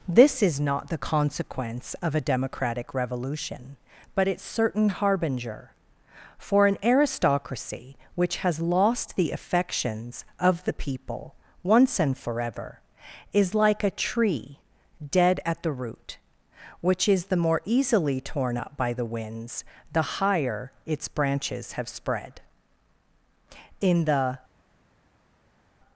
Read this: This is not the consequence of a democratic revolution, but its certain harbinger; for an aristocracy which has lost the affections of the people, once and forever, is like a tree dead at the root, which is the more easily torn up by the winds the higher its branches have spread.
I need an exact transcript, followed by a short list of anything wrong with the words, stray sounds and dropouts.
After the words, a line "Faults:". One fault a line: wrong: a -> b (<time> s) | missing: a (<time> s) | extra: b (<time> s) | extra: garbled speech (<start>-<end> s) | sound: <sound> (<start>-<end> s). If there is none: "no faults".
This is not the consequence of a democratic revolution, but its certain harbinger; for an aristocracy which has lost the affections of the people, once and forever, is like a tree dead at the root, which is the more easily torn up by the winds the higher its branches have spread. In the
Faults:
extra: In the (23.8 s)